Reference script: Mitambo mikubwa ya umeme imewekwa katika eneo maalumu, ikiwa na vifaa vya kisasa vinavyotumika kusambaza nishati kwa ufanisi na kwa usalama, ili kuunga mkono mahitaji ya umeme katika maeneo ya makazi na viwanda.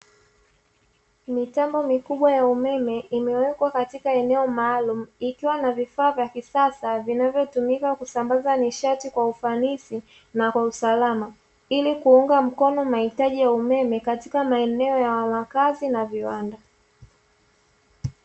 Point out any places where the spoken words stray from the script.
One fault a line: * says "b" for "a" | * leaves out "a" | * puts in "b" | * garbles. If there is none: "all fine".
all fine